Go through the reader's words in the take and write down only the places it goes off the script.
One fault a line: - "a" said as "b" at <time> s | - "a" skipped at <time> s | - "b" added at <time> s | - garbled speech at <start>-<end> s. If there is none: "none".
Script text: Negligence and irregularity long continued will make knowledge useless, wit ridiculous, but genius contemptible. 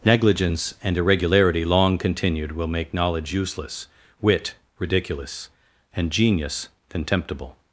- "but" said as "and" at 5.9 s